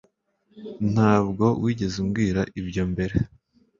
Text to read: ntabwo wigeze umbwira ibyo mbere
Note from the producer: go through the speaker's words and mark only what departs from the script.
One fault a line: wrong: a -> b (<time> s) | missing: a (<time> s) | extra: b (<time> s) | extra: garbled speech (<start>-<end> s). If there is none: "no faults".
no faults